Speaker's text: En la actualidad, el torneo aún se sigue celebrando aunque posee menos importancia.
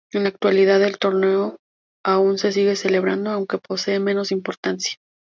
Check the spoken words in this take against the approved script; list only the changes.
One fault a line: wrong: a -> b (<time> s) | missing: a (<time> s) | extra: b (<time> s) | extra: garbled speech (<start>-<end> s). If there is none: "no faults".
no faults